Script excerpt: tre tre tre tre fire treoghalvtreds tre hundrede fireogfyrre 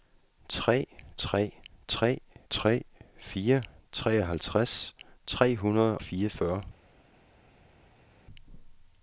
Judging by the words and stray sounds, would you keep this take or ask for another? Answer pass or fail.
pass